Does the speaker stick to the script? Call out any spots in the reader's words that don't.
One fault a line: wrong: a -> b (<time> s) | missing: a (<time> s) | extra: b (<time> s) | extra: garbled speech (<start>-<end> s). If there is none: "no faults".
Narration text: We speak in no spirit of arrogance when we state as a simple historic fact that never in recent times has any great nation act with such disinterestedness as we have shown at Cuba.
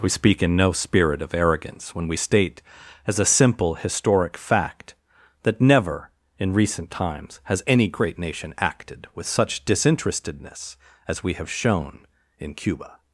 wrong: act -> acted (8.6 s)
wrong: at -> in (12.4 s)